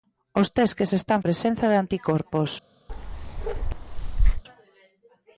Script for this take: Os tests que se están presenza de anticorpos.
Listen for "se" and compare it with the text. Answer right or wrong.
right